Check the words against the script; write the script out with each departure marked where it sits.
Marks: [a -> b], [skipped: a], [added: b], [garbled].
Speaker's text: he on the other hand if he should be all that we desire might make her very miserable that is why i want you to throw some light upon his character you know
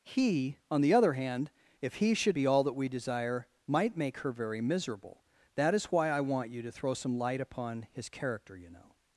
he on the other hand if he should be all that we desire might make her very miserable that is why i want you to throw some light upon his character you know